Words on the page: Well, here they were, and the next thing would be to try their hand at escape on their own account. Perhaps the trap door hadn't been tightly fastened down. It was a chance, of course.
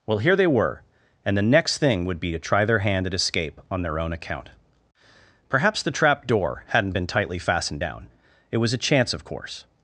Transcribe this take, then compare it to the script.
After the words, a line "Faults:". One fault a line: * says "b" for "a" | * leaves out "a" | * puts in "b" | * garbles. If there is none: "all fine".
Well, here they were, and the next thing would be to try their hand at escape on their own account. Perhaps the trap door hadn't been tightly fastened down. It was a chance, of course.
Faults:
all fine